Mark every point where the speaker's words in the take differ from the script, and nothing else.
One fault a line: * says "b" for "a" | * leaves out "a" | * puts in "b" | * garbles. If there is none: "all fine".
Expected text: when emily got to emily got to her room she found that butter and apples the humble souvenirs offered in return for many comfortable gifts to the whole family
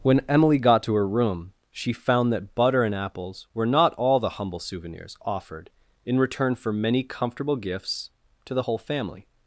* leaves out "emily got to"
* puts in "were not all"